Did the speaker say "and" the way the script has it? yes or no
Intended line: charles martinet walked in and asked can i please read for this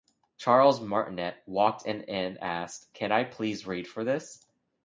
yes